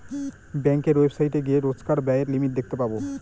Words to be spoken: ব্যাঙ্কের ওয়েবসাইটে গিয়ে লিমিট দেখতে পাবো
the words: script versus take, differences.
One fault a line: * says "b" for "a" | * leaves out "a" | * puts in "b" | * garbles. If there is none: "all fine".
* puts in "রোজকার ব্যায়ের"